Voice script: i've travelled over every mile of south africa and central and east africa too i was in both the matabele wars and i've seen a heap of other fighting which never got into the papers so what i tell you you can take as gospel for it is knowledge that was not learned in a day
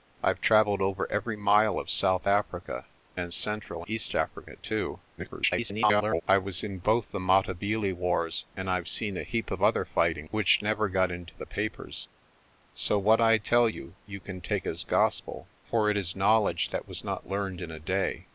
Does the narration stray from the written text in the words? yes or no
yes